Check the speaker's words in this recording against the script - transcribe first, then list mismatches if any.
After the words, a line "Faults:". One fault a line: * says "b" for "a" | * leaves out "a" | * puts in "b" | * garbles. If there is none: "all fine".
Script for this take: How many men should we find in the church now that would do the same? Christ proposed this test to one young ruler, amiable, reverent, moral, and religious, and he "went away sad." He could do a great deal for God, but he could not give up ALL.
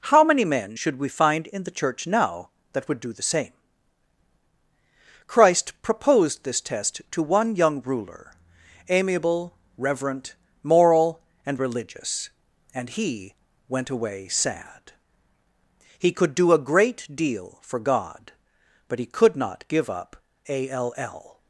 How many men should we find in the church now that would do the same? Christ proposed this test to one young ruler, amiable, reverent, moral, and religious, and he "went away sad." He could do a great deal for God, but he could not give up ALL.
Faults:
all fine